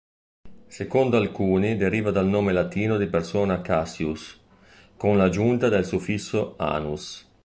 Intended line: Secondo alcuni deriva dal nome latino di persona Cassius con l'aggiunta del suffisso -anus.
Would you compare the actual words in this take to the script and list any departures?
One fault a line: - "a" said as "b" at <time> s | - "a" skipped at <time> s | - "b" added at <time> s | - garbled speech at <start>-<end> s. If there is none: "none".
none